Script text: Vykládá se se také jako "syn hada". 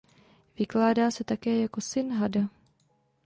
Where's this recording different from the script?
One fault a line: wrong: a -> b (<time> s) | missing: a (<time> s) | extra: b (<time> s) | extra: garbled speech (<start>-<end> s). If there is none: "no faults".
missing: se (1.2 s)